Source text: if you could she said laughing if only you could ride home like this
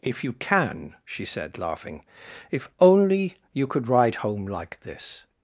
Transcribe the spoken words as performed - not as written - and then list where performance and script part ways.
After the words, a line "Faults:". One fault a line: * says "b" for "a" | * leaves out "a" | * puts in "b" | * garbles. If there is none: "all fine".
if you can she said laughing if only you could ride home like this
Faults:
* says "can" for "could"